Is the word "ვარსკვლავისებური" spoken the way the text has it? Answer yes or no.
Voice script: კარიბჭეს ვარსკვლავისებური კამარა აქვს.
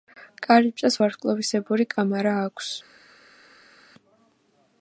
yes